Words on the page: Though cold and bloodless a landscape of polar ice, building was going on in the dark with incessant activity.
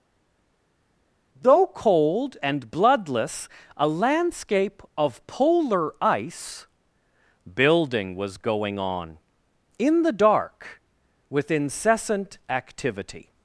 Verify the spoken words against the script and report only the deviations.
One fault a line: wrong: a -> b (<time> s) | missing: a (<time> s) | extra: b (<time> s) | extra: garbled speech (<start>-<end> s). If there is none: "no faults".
no faults